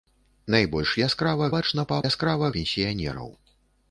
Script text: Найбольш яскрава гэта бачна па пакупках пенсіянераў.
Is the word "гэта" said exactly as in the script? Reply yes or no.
no